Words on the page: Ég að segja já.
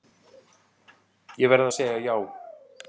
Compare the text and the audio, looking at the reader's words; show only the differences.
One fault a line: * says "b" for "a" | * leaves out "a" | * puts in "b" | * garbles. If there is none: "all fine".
* puts in "verð"